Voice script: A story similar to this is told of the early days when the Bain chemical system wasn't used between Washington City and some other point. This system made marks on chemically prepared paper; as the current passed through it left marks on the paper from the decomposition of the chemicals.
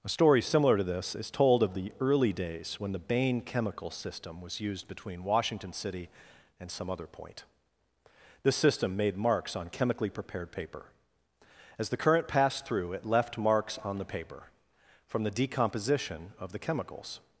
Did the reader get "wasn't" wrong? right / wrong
wrong